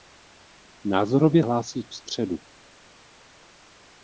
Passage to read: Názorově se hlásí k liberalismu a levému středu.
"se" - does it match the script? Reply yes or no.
no